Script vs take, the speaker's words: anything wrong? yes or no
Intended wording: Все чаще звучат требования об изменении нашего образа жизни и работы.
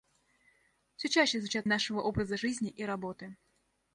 yes